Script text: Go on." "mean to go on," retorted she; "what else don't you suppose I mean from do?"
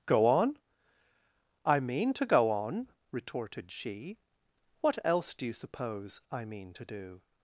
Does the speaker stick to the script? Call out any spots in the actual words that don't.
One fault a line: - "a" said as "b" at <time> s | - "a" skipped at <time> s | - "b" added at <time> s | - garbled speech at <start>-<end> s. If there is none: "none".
- "I" added at 1.6 s
- "don't" said as "do" at 5.3 s
- "from" said as "to" at 6.7 s